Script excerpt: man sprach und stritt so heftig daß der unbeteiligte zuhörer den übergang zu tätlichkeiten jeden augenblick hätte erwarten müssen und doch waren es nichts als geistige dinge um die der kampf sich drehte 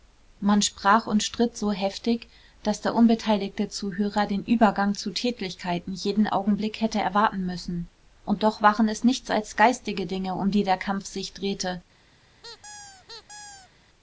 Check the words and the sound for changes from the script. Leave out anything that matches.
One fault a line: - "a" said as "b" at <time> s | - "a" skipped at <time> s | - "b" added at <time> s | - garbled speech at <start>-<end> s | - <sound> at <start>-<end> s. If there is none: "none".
- squeak at 12.4-13.7 s